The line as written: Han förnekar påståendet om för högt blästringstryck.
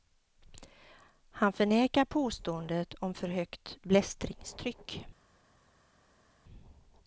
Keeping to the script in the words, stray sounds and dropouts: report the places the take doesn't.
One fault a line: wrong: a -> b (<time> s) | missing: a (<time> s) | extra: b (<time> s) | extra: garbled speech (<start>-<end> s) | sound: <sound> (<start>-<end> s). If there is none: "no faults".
no faults